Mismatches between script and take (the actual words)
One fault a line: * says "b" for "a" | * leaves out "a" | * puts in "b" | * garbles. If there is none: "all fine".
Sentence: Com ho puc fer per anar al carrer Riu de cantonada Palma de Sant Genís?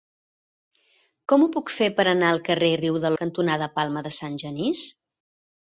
all fine